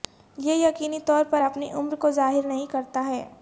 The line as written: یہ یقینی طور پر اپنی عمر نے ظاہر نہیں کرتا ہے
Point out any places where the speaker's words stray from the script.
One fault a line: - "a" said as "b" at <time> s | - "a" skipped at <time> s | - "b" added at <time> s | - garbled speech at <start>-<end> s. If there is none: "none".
- "نے" said as "کو" at 1.9 s